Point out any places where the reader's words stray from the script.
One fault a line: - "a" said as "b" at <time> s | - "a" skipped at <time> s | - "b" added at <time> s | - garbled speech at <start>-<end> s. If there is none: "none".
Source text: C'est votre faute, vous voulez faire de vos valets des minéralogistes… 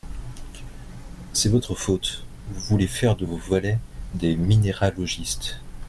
none